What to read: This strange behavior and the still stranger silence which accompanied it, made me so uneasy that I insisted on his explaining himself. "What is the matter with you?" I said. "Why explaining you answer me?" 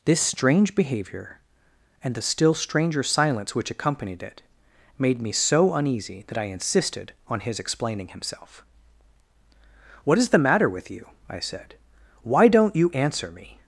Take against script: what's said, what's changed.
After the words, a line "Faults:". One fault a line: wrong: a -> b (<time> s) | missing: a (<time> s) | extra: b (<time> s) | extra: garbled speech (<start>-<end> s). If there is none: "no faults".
This strange behavior and the still stranger silence which accompanied it, made me so uneasy that I insisted on his explaining himself. "What is the matter with you?" I said. "Why don't you answer me?"
Faults:
wrong: explaining -> don't (12.5 s)